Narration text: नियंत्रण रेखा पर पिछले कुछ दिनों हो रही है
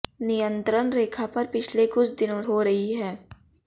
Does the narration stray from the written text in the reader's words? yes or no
no